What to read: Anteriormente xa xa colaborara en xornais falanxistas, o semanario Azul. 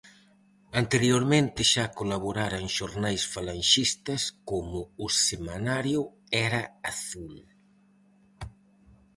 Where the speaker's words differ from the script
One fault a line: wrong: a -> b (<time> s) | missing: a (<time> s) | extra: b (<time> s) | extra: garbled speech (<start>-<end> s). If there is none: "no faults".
missing: xa (1.8 s)
extra: como (4.5 s)
extra: Era (6.5 s)